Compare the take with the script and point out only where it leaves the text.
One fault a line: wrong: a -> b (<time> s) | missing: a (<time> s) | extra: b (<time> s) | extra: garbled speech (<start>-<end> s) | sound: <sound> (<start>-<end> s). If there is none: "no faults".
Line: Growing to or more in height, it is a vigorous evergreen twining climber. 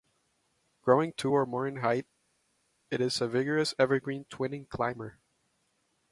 no faults